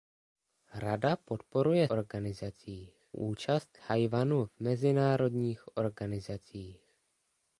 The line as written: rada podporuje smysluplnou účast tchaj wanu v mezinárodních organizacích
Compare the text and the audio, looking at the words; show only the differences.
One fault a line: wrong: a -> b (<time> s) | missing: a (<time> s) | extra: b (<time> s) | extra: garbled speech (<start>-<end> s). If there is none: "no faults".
wrong: smysluplnou -> organizacích (1.9 s)